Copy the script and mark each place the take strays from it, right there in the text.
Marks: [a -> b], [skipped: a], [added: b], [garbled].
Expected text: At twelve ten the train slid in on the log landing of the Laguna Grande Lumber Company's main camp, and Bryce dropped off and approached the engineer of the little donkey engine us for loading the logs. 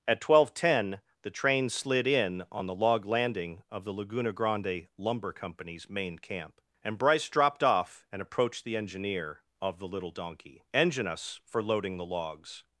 At twelve ten the train slid in on the log landing of the Laguna Grande Lumber Company's main camp, and Bryce dropped off and approached the engineer of the little donkey engine us for loading the logs.